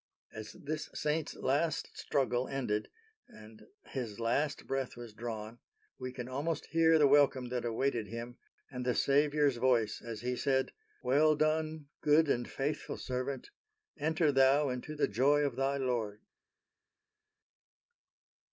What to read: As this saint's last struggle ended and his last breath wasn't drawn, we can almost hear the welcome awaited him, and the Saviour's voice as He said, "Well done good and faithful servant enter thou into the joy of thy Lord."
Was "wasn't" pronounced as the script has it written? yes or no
no